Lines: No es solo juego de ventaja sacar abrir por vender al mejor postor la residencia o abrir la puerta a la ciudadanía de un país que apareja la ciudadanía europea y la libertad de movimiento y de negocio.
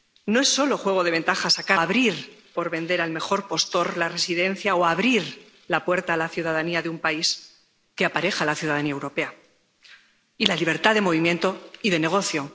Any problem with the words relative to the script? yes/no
no